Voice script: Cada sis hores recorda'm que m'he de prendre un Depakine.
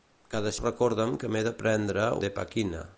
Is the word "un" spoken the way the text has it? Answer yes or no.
no